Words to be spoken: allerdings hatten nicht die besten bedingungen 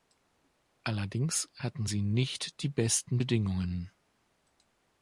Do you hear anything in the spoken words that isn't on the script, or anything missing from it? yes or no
yes